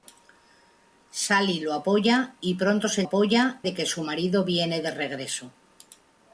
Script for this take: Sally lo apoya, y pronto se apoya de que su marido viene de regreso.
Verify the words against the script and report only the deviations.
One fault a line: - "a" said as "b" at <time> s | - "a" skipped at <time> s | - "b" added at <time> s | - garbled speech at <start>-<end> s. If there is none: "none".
none